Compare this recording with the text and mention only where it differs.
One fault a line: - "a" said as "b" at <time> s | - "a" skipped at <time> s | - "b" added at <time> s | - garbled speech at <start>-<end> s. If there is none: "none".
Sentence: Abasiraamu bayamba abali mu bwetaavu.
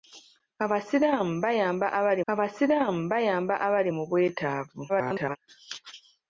- "abasiraamu bayamba abali" added at 2.3 s
- garbled speech at 4.9-5.4 s